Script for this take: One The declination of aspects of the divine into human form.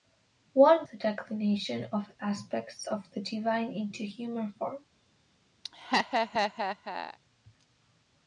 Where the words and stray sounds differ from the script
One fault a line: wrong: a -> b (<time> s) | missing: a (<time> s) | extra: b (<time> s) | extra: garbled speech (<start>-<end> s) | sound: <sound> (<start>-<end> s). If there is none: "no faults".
sound: laugh (5.6-7.2 s)